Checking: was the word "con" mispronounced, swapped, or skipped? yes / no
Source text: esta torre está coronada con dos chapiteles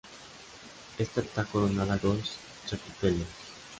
yes